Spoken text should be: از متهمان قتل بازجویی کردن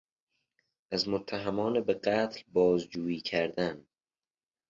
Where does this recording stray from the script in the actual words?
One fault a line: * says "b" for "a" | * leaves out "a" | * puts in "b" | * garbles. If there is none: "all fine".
* puts in "به"